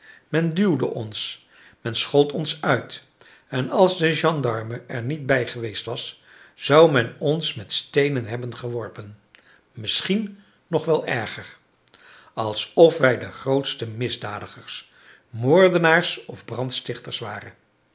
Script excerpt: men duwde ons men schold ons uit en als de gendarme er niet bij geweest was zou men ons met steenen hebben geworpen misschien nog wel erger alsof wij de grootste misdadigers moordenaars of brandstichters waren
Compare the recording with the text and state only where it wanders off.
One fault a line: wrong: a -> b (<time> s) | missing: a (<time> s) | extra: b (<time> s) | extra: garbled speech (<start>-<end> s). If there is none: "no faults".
no faults